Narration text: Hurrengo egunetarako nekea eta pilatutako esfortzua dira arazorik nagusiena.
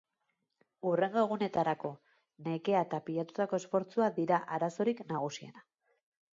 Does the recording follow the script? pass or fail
pass